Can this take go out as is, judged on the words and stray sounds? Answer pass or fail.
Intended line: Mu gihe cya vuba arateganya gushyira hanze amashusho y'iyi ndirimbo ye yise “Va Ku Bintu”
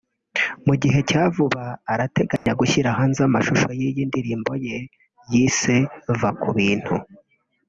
fail